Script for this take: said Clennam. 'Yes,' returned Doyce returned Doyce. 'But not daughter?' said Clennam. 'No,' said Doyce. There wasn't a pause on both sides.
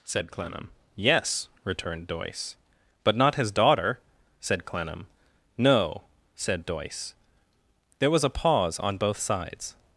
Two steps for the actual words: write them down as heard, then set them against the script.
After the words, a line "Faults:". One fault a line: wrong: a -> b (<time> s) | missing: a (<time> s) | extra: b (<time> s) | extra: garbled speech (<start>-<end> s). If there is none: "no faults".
said Clennam. 'Yes,' returned Doyce. 'But not his daughter?' said Clennam. 'No,' said Doyce. There was a pause on both sides.
Faults:
missing: returned Doyce (2.5 s)
extra: his (3.3 s)
wrong: wasn't -> was (8.1 s)